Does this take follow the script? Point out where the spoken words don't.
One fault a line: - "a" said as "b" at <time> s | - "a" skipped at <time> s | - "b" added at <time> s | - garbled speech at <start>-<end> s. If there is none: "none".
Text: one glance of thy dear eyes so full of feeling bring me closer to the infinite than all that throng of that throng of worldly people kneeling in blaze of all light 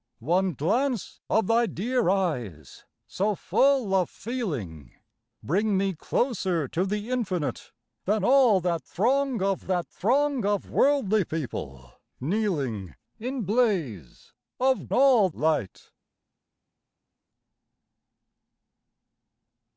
none